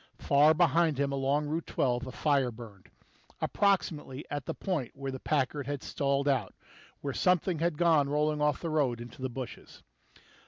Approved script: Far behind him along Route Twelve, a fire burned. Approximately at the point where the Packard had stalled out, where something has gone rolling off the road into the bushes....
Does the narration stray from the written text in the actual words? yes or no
yes